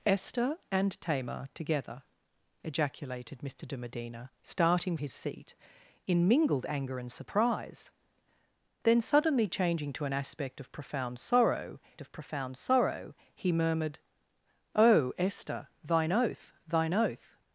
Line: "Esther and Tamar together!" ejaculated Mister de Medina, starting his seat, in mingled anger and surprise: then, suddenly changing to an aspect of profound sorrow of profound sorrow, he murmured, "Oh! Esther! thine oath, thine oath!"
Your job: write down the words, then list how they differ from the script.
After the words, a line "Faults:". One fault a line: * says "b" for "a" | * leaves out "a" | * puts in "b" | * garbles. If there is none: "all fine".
"Esther and Tamar together!" ejaculated Mister de Medina, starting his seat, in mingled anger and surprise: then, suddenly changing to an aspect of profound sorrow of profound sorrow, he murmured, "Oh! Esther! thine oath, thine oath!"
Faults:
all fine